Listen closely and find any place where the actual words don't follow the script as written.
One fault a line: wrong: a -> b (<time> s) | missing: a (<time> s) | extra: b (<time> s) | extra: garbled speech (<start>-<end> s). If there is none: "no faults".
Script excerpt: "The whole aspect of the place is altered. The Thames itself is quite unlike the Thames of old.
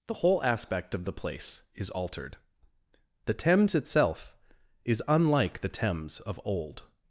missing: quite (5.0 s)